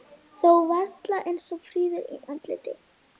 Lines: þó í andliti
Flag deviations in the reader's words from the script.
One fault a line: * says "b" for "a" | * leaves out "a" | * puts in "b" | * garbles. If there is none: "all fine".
* puts in "varla eins fríður"